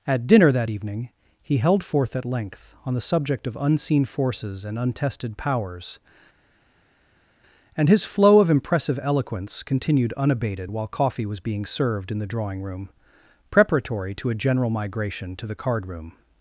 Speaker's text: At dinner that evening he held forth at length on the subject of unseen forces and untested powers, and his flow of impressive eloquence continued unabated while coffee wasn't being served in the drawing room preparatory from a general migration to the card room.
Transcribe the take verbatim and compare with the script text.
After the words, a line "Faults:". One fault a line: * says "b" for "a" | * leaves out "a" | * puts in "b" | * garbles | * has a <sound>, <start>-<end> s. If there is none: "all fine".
At dinner that evening he held forth at length on the subject of unseen forces and untested powers, and his flow of impressive eloquence continued unabated while coffee was being served in the drawing room preparatory to a general migration to the card room.
Faults:
* says "was" for "wasn't"
* says "to" for "from"